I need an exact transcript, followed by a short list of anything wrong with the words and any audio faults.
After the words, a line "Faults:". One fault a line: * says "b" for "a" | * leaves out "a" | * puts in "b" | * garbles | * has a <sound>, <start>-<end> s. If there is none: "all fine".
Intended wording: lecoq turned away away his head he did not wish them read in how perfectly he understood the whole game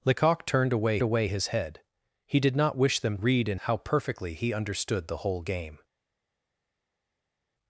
lecoq turned away away his head he did not wish them read in how perfectly he understood the whole game
Faults:
all fine